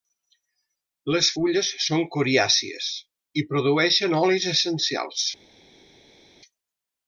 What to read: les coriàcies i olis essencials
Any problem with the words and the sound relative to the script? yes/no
yes